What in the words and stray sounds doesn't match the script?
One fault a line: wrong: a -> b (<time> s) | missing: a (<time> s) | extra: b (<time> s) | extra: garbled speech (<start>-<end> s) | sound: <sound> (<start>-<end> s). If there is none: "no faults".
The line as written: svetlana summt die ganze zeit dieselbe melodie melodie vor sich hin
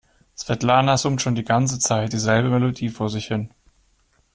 extra: schon (1.2 s)
missing: melodie (2.9 s)